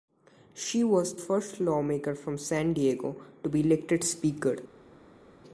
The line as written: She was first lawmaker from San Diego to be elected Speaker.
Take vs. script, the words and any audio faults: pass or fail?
pass